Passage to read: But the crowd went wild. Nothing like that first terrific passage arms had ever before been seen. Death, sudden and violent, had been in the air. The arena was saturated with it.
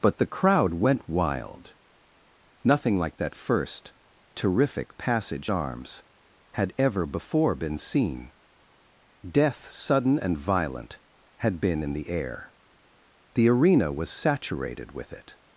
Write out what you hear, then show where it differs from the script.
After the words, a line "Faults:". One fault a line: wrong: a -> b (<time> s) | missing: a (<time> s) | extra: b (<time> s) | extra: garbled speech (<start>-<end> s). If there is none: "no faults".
But the crowd went wild. Nothing like that first terrific passage arms had ever before been seen. Death, sudden and violent, had been in the air. The arena was saturated with it.
Faults:
no faults